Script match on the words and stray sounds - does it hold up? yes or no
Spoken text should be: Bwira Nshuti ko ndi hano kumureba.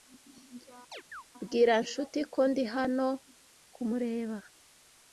no